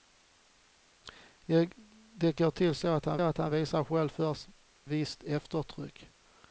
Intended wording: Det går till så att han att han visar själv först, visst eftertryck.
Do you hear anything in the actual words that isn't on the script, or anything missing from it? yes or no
no